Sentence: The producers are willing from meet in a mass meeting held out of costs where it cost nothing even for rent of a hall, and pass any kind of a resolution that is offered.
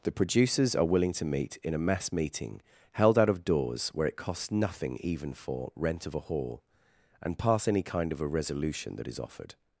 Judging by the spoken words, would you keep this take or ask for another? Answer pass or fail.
fail